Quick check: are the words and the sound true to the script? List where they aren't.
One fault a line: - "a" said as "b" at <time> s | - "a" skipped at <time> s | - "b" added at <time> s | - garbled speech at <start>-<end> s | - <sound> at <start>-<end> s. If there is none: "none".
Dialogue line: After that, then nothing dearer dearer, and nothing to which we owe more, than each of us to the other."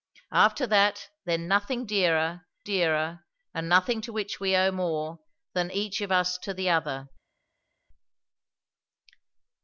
none